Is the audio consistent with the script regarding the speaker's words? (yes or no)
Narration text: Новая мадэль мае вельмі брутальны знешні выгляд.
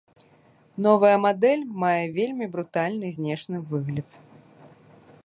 yes